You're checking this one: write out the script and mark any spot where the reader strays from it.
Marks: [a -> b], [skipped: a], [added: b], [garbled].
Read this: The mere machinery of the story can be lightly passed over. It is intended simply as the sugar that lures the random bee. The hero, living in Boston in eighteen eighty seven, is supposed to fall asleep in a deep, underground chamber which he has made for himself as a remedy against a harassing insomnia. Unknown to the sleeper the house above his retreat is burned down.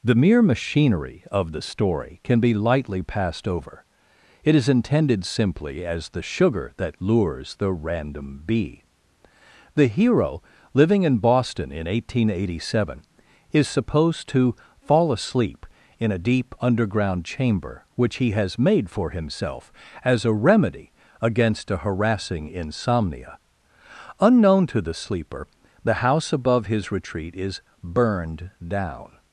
The mere machinery of the story can be lightly passed over. It is intended simply as the sugar that lures the random bee. The hero, living in Boston in eighteen eighty seven, is supposed to fall asleep in a deep, underground chamber which he has made for himself as a remedy against a harassing insomnia. Unknown to the sleeper the house above his retreat is burned down.